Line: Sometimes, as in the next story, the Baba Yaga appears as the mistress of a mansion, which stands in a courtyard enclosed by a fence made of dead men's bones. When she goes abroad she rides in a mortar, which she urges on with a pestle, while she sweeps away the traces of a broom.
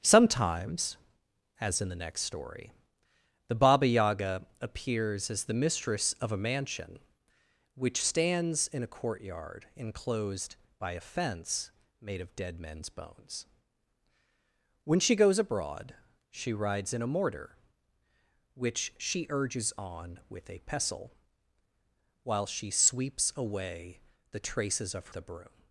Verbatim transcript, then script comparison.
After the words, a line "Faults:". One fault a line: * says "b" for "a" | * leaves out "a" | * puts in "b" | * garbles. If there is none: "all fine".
Sometimes, as in the next story, the Baba Yaga appears as the mistress of a mansion, which stands in a courtyard enclosed by a fence made of dead men's bones. When she goes abroad she rides in a mortar, which she urges on with a pestle, while she sweeps away the traces of a broom.
Faults:
all fine